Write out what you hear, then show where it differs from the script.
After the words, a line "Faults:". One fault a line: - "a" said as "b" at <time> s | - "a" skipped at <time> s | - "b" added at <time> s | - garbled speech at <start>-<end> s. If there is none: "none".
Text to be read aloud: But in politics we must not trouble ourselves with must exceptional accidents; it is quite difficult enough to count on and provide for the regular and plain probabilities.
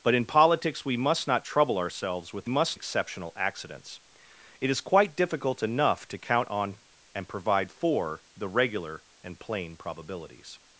But in politics we must not trouble ourselves with must exceptional accidents; it is quite difficult enough to count on and provide for the regular and plain probabilities.
Faults:
none